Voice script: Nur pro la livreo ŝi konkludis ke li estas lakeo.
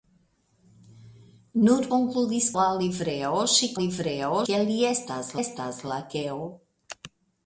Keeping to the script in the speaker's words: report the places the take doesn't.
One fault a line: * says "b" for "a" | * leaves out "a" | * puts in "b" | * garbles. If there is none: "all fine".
* says "konkludis" for "pro"
* says "livreo" for "konkludis"
* puts in "estas"